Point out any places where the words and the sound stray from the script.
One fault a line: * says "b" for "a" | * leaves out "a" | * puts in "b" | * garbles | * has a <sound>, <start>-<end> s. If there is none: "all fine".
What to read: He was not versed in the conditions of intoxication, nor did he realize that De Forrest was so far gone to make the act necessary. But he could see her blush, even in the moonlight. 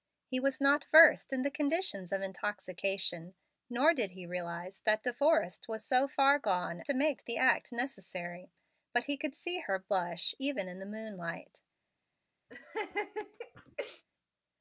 * has a laugh, 12.5-14.0 s